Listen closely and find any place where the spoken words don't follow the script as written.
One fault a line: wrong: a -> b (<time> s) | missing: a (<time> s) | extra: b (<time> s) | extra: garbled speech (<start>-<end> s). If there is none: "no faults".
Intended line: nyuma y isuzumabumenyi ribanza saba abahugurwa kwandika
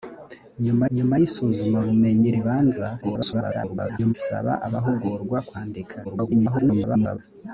extra: nyuma (0.9 s)
extra: garbled speech (3.0-4.1 s)
extra: garbled speech (6.0-7.2 s)